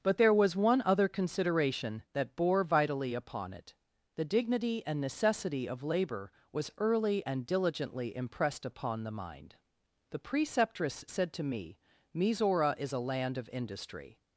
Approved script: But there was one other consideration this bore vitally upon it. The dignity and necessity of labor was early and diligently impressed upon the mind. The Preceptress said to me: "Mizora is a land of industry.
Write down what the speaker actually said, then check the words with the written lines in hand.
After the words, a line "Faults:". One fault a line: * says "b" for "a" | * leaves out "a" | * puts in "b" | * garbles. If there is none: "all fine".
But there was one other consideration that bore vitally upon it. The dignity and necessity of labor was early and diligently impressed upon the mind. The Preceptress said to me: "Mizora is a land of industry.
Faults:
* says "that" for "this"